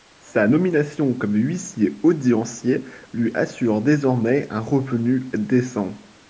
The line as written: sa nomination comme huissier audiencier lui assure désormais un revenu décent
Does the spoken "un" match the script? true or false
true